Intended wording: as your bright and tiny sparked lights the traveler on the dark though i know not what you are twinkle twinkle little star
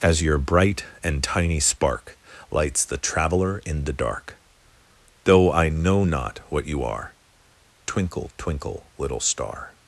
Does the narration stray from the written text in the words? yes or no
yes